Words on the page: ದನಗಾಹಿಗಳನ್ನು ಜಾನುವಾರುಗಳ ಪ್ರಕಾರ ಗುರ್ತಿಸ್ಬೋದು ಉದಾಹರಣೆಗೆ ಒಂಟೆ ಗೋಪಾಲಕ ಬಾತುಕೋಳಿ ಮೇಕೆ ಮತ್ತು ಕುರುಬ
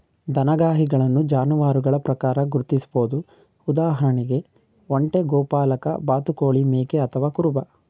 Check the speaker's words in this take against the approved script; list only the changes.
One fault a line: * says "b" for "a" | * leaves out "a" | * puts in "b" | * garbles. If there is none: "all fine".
* says "ಅಥವಾ" for "ಮತ್ತು"